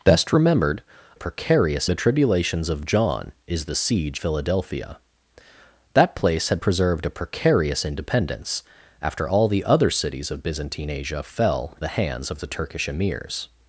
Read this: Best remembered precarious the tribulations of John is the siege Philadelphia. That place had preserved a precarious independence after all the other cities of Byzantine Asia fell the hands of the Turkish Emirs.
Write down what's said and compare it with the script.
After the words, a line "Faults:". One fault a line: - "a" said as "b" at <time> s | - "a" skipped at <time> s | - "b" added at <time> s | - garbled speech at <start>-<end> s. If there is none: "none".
Best remembered precarious the tribulations of John is the siege Philadelphia. That place had preserved a precarious independence after all the other cities of Byzantine Asia fell the hands of the Turkish Emirs.
Faults:
none